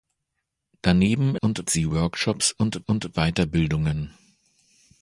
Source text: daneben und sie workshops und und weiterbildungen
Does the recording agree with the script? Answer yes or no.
yes